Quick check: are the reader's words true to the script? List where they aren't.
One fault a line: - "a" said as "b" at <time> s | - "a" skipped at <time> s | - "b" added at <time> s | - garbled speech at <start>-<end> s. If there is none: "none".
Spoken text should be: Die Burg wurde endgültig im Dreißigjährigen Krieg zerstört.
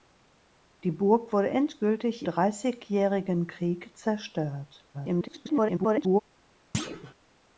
- "im" skipped at 2.2 s
- garbled speech at 4.9-6.2 s